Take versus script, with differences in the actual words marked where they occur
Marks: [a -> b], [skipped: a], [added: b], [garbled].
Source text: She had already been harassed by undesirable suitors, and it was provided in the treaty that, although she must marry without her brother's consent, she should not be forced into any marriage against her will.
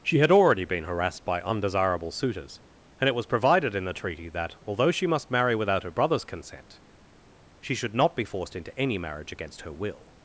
She had already been harassed by undesirable suitors, and it was provided in the treaty that, although she must marry without her brother's consent, she should not be forced into any marriage against her will.